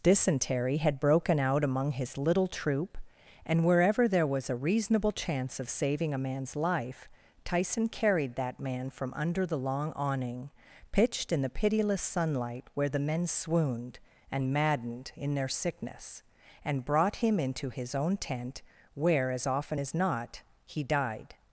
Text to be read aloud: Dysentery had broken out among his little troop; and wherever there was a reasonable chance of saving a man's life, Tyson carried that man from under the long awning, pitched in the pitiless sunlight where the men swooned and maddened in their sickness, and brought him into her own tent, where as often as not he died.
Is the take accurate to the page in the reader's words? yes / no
no